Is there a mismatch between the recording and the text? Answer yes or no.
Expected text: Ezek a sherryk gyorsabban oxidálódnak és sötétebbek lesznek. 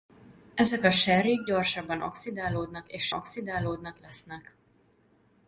yes